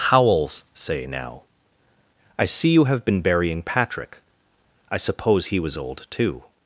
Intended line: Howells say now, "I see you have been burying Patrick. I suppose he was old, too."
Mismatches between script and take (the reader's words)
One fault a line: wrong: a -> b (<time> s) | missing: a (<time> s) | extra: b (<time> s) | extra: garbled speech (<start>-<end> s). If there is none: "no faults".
no faults